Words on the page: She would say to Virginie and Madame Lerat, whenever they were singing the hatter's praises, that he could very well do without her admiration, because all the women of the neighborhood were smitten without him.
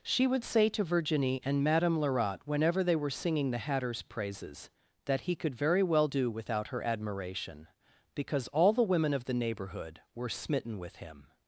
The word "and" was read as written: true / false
true